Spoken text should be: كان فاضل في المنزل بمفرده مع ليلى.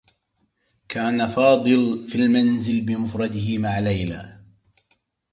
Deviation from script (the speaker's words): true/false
false